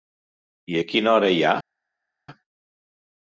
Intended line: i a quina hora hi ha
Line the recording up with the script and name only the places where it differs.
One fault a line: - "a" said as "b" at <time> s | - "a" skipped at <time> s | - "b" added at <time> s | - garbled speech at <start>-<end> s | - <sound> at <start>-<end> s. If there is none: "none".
none